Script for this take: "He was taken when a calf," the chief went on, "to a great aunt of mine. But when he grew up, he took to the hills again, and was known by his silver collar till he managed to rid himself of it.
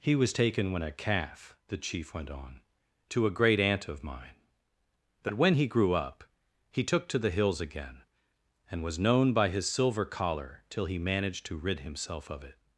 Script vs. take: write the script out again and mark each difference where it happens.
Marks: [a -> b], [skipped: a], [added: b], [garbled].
"He was taken when a calf," the chief went on, "to a great aunt of mine. But when he grew up, he took to the hills again, and was known by his silver collar till he managed to rid himself of it.